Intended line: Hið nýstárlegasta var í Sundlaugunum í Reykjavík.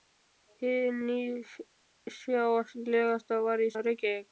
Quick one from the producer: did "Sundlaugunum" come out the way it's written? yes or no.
no